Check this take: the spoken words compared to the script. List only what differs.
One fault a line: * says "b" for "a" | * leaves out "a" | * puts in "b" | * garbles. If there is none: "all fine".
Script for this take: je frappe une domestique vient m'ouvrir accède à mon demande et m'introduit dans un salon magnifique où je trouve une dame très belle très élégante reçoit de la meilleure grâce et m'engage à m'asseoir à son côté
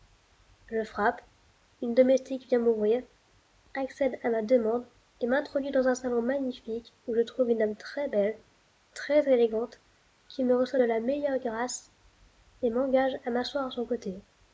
* says "ma" for "mon"
* puts in "qui me"